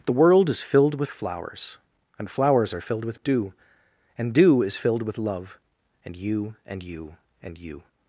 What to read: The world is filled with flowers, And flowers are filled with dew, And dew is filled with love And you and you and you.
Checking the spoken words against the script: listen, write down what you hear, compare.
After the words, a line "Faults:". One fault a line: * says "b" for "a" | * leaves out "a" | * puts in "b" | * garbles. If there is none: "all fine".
The world is filled with flowers, And flowers are filled with dew, And dew is filled with love And you and you and you.
Faults:
all fine